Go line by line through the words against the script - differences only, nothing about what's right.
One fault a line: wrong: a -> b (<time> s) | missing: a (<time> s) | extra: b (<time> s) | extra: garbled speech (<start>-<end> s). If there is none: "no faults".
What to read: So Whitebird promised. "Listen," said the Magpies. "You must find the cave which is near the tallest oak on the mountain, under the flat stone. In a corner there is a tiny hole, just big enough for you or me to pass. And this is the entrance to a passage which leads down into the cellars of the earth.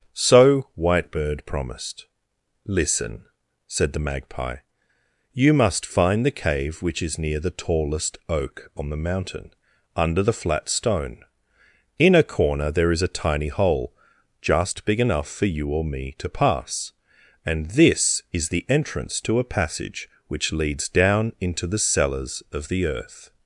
wrong: Magpies -> Magpie (4.0 s)